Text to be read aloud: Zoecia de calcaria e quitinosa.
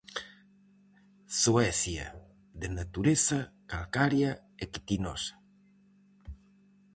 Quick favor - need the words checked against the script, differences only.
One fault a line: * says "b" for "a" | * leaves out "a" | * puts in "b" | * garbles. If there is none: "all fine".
* puts in "natureza"